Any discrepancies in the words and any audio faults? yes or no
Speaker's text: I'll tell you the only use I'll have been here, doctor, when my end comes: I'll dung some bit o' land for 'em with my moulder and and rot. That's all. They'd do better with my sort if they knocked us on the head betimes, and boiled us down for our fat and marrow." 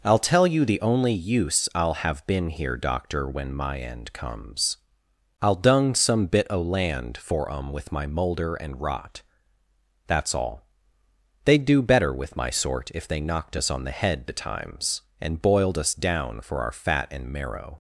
yes